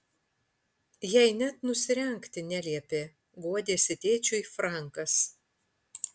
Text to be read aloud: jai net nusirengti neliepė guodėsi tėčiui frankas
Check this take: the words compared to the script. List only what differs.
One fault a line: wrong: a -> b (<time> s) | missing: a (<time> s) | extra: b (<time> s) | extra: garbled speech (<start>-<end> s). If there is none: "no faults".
no faults